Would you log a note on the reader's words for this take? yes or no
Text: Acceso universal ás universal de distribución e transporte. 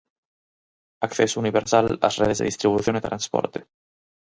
yes